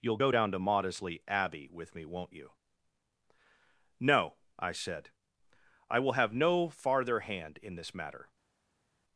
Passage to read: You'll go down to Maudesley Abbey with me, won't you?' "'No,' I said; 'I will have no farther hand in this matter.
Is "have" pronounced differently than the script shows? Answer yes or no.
no